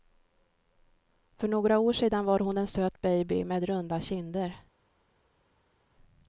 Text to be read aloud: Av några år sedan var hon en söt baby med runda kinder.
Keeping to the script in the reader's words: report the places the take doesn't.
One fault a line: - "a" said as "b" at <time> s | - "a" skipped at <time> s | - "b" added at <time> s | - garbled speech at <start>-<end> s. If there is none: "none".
- "Av" said as "För" at 1.4 s